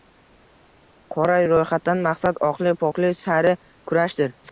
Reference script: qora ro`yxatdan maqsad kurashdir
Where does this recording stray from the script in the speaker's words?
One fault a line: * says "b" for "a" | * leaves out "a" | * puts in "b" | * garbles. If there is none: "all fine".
* puts in "oqlik poklik sari"